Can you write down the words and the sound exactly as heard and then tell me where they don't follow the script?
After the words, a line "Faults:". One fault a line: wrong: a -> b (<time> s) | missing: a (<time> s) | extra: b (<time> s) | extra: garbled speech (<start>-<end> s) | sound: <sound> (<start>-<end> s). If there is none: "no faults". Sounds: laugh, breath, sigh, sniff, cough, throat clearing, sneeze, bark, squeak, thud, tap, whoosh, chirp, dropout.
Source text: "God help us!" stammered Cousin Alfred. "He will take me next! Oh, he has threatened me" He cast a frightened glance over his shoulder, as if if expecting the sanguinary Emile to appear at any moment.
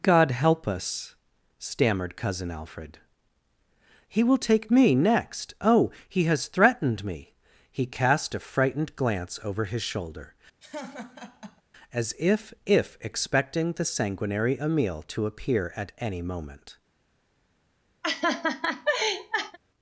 "God help us!" stammered Cousin Alfred. "He will take me next! Oh, he has threatened me" He cast a frightened glance over his shoulder, as if if expecting the sanguinary Emile to appear at any moment.
Faults:
sound: laugh (10.6-11.6 s)
sound: laugh (18.0-19.6 s)